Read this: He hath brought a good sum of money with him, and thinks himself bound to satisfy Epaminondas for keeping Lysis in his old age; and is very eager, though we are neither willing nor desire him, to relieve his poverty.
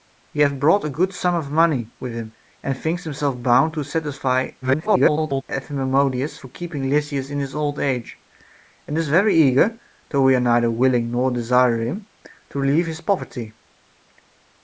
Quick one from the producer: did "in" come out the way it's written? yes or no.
yes